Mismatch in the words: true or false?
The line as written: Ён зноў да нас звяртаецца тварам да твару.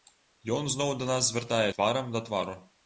false